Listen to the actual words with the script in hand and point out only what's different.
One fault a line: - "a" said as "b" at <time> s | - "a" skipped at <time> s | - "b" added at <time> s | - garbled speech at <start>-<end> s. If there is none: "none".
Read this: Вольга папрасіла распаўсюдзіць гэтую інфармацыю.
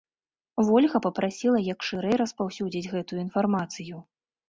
- "як шырэй" added at 1.7 s